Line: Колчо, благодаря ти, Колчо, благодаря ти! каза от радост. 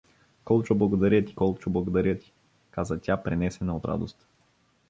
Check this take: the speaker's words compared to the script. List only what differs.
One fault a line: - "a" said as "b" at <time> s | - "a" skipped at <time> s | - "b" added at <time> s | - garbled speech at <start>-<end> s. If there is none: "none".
- "тя пренесена" added at 3.0 s